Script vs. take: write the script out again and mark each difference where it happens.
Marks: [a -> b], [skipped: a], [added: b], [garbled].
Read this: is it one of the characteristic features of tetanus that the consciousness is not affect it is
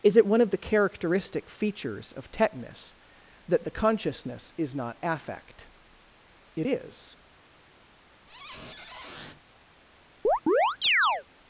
is it one of the characteristic features of tetanus that the consciousness is not affect it is